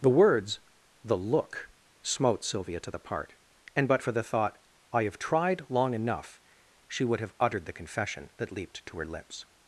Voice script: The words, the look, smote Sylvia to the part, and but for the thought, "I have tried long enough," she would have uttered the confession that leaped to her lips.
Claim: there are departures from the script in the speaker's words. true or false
false